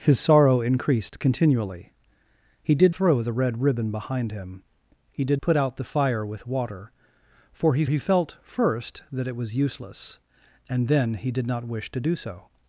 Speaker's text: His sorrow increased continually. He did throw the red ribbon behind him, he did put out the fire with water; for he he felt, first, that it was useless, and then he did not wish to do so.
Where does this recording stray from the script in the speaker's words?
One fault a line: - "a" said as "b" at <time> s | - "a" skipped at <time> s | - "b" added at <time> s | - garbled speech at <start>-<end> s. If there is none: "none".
none